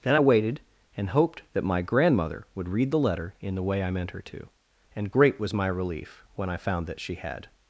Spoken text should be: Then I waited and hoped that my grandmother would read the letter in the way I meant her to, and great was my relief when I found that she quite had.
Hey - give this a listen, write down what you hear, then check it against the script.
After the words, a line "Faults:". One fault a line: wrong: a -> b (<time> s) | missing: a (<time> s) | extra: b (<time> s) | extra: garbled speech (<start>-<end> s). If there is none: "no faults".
Then I waited and hoped that my grandmother would read the letter in the way I meant her to, and great was my relief when I found that she had.
Faults:
missing: quite (7.1 s)